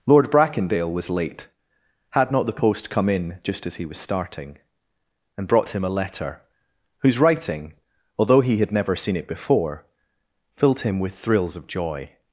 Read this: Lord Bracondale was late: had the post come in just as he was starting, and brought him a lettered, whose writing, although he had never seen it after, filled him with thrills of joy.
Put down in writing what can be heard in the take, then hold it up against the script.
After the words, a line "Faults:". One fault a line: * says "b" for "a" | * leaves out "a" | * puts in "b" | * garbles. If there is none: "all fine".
Lord Bracondale was late: had not the post come in just as he was starting, and brought him a letter, whose writing, although he had never seen it before, filled him with thrills of joy.
Faults:
* puts in "not"
* says "letter" for "lettered"
* says "before" for "after"